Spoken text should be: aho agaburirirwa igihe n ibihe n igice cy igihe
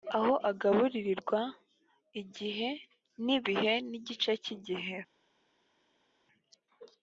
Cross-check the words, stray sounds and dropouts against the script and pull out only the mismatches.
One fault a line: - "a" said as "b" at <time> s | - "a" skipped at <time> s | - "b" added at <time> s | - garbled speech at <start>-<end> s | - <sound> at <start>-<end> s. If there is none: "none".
none